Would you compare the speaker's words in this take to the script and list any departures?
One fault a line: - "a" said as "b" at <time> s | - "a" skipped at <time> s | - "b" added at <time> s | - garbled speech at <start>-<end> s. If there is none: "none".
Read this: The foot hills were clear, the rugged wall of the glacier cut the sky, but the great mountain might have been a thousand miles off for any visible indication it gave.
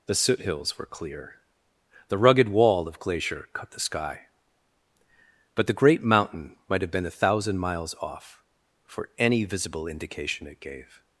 - "foot" said as "soot" at 0.1 s
- "the" skipped at 3.0 s